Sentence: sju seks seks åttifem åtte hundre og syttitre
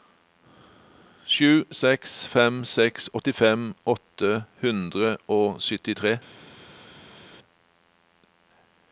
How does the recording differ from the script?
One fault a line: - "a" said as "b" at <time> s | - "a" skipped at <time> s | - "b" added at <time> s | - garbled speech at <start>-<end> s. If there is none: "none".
- "fem" added at 2.4 s